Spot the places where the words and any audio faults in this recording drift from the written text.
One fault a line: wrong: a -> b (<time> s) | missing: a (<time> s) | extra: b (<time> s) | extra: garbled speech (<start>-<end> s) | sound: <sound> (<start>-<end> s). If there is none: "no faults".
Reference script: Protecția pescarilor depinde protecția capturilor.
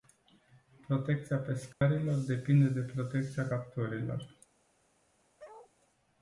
sound: dropout (1.7-1.8 s)
extra: de (2.7 s)
sound: bark (5.4-5.7 s)